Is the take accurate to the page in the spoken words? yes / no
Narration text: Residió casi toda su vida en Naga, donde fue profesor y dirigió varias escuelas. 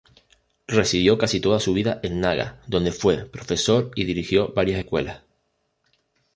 yes